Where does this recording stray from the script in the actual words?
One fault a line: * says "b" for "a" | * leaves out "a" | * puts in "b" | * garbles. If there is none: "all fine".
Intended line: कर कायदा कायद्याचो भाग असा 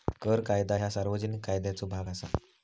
* puts in "ह्या सार्वजनिक"